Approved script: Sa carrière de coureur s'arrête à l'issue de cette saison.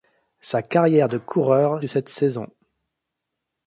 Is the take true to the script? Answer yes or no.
no